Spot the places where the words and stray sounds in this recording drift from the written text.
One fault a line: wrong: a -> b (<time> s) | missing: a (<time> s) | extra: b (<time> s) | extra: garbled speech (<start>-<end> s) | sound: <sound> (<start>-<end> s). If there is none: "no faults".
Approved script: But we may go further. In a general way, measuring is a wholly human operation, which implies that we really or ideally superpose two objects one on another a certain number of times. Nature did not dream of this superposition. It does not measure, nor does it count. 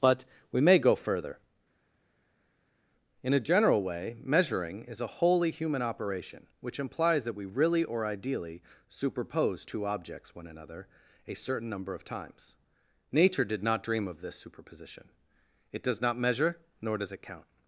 missing: on (10.5 s)